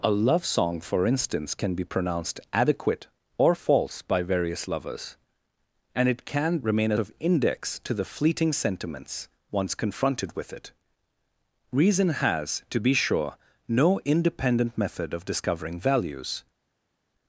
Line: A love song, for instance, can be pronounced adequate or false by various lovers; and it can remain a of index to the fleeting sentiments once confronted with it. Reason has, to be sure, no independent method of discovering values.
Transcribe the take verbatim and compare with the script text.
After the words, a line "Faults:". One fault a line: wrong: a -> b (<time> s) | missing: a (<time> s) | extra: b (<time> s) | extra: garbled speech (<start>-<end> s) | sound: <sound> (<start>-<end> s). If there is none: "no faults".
A love song, for instance, can be pronounced adequate or false by various lovers; and it can remain a of index to the fleeting sentiments once confronted with it. Reason has, to be sure, no independent method of discovering values.
Faults:
no faults